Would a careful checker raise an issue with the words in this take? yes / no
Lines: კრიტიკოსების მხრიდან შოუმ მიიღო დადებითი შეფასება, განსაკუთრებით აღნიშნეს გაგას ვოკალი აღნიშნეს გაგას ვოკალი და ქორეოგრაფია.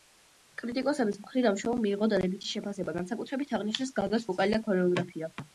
yes